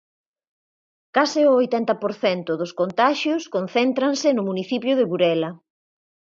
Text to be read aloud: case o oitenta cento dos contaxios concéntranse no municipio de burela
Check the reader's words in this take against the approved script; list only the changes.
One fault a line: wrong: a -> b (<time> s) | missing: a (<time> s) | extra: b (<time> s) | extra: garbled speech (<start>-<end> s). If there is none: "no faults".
extra: por (2.0 s)